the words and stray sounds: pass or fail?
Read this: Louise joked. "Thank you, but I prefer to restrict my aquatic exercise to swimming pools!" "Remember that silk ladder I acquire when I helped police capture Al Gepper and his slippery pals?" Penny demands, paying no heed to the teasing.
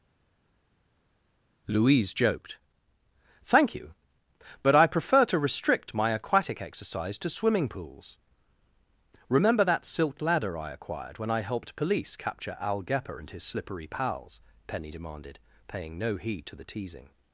fail